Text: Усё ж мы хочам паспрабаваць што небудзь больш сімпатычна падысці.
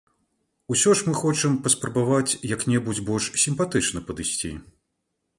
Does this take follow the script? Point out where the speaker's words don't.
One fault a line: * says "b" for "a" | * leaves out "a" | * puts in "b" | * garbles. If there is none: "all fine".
* says "як" for "што"